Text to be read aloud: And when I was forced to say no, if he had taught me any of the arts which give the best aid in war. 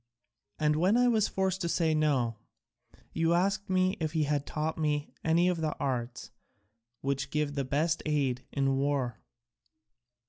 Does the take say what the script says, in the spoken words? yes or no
no